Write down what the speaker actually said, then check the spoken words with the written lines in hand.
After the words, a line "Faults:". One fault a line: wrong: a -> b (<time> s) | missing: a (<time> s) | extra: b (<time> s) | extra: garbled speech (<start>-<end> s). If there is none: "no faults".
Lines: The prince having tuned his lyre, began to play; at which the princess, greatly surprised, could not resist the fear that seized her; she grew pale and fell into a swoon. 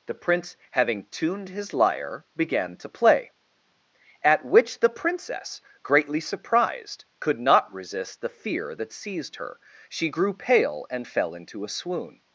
The prince having tuned his lyre, began to play; at which the princess, greatly surprised, could not resist the fear that seized her; she grew pale and fell into a swoon.
Faults:
no faults